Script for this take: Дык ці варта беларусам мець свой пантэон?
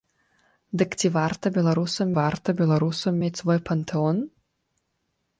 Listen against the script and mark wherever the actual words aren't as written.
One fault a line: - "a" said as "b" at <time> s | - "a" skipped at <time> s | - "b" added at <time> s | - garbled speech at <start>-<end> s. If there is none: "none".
- "варта беларусам" added at 2.2 s